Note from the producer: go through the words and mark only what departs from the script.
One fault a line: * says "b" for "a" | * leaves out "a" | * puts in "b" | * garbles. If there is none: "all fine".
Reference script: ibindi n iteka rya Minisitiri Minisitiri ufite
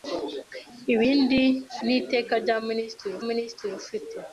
all fine